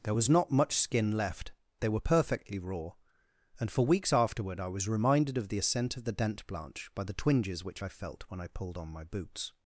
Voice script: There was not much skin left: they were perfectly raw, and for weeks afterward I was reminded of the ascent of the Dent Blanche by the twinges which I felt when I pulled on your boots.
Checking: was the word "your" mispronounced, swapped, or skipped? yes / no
yes